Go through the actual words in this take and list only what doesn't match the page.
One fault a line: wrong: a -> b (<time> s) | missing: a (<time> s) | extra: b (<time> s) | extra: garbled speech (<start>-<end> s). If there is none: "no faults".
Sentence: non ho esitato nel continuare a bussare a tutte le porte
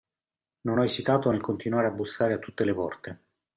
no faults